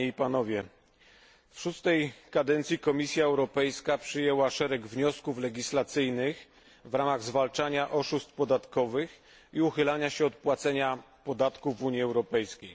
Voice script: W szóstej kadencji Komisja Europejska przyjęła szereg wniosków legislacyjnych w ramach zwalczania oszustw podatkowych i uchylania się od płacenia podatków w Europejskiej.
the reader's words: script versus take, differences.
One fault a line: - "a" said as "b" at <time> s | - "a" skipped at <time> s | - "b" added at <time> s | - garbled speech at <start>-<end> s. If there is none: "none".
- "Unii" added at 11.8 s